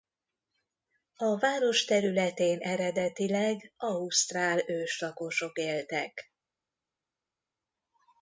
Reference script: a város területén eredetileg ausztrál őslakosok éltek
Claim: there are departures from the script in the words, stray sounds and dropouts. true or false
false